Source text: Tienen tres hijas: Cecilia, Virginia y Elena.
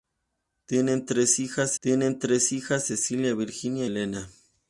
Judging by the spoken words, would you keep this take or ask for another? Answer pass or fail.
fail